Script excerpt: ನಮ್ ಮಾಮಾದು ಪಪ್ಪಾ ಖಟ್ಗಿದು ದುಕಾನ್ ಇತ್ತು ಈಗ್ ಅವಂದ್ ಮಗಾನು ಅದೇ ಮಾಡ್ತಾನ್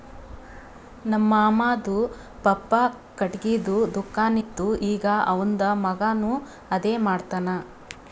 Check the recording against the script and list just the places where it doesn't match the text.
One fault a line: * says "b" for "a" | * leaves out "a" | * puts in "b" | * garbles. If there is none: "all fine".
all fine